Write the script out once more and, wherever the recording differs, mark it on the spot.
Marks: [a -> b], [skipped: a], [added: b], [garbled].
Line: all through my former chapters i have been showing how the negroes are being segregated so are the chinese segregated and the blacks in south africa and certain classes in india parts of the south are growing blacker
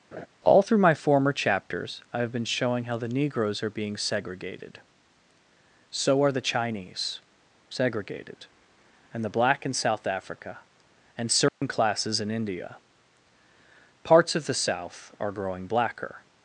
all through my former chapters i have been showing how the negroes are being segregated so are the chinese segregated and the [blacks -> black] in south africa and certain classes in india parts of the south are growing blacker